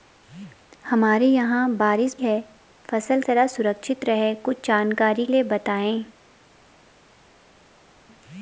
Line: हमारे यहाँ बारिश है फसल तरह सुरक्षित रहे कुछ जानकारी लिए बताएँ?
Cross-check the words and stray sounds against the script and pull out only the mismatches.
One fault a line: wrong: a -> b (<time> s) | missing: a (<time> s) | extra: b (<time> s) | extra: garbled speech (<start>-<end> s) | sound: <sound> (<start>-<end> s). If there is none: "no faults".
no faults